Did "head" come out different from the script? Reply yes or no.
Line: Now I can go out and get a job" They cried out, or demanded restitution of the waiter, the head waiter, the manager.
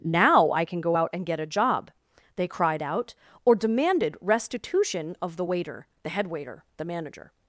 no